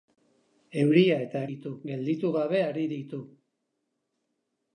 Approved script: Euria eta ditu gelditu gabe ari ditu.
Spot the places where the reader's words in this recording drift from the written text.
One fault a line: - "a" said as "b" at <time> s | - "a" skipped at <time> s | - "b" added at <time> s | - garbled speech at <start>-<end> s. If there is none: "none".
none